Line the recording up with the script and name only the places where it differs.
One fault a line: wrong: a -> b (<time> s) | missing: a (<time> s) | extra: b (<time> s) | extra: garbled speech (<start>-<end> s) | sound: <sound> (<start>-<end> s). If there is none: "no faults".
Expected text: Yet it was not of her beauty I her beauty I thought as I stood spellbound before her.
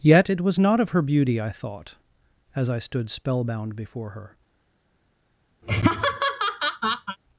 missing: her beauty I (1.5 s)
sound: laugh (5.6-7.2 s)